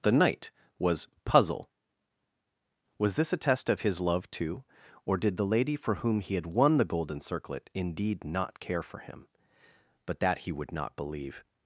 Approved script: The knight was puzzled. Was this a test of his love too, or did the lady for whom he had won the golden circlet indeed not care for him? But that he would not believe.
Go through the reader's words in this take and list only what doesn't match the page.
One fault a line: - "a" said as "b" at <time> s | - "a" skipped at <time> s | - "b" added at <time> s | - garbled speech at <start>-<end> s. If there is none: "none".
- "puzzled" said as "puzzle" at 1.2 s